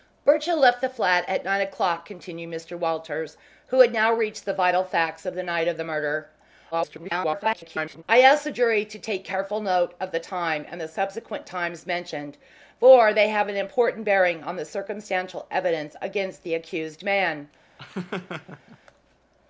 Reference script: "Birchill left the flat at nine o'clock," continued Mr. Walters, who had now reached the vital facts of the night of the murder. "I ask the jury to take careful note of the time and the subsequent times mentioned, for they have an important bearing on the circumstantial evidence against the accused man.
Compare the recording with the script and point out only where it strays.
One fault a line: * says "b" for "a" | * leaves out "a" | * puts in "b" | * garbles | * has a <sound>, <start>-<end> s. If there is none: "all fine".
* garbles
* has a laugh, 17.8-18.8 s